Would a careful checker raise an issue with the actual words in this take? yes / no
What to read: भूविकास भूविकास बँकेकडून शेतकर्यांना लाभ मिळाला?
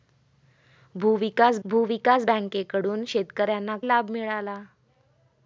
no